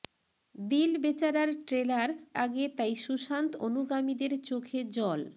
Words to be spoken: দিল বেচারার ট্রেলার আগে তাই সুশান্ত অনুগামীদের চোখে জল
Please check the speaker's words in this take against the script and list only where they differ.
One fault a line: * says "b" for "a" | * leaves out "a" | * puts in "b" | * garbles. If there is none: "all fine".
all fine